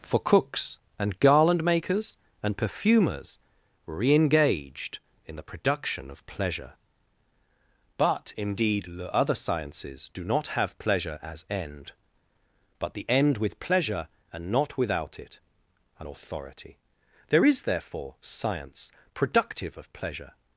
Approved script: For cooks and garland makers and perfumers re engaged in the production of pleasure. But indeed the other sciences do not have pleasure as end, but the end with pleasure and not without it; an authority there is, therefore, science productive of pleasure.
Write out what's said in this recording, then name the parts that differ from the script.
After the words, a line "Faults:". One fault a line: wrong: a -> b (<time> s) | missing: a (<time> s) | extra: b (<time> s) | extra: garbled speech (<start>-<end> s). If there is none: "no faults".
For cooks and garland makers and perfumers re engaged in the production of pleasure. But indeed the other sciences do not have pleasure as end, but the end with pleasure and not without it; an authority there is, therefore, science productive of pleasure.
Faults:
no faults